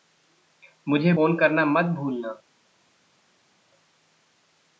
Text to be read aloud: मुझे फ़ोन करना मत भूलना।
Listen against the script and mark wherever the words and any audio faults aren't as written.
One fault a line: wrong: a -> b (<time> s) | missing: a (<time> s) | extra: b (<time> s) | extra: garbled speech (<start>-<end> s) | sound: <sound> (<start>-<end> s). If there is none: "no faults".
no faults